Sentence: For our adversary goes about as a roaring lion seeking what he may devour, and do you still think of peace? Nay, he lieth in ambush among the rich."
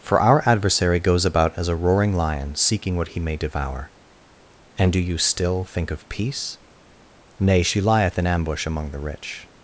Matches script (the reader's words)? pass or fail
fail